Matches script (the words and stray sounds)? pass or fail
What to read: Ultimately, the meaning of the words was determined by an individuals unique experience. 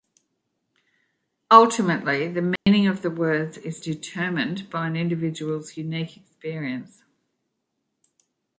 fail